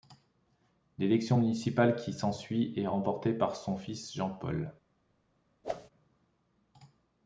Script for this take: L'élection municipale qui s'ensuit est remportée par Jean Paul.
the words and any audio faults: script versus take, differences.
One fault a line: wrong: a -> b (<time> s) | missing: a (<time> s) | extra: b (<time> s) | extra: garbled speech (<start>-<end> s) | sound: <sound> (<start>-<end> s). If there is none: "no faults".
extra: son fils (3.6 s)
sound: whoosh (5.6-5.9 s)